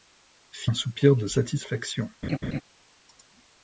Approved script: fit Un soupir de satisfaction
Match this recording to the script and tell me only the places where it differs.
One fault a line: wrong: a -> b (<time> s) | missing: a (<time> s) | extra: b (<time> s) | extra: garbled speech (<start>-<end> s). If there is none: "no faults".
no faults